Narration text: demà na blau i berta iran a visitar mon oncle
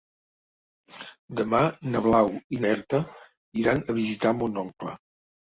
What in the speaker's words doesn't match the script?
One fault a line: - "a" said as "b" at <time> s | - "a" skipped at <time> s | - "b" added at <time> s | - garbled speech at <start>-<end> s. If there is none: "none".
none